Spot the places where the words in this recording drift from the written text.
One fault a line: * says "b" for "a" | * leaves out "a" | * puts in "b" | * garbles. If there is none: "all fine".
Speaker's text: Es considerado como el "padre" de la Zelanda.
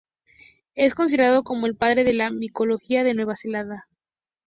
* puts in "micología de Nueva"